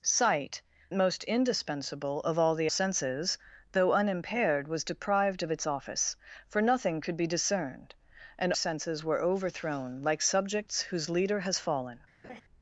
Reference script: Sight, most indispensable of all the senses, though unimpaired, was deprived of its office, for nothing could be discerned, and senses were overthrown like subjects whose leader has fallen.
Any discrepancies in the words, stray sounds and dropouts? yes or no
yes